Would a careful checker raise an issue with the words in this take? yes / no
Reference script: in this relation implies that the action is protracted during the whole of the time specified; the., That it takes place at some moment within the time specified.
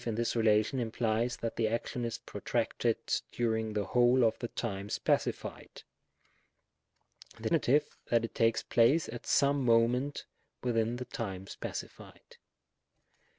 no